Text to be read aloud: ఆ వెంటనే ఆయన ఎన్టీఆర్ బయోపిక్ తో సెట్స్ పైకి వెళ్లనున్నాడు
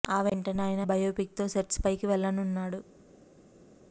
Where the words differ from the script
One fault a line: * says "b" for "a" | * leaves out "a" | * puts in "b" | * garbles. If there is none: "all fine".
* leaves out "ఎన్టీఆర్"